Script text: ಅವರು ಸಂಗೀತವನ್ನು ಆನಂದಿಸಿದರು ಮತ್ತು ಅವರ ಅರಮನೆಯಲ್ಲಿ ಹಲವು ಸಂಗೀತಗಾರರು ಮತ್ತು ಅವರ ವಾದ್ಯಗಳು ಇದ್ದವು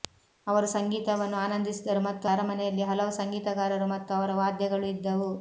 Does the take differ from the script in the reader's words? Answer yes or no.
yes